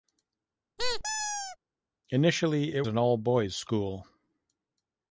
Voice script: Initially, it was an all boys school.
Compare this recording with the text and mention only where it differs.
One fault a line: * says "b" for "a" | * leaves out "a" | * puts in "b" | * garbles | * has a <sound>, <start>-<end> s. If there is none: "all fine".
* has a squeak, 0.8-1.6 s
* leaves out "was"